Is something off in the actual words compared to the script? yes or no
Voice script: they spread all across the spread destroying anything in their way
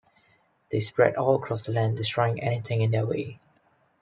yes